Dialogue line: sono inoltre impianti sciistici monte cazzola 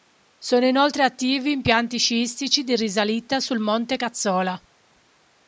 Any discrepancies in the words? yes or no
yes